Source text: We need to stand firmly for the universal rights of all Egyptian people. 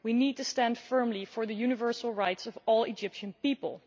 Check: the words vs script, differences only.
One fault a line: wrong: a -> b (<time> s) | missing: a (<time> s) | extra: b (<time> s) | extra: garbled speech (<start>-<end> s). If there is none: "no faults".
no faults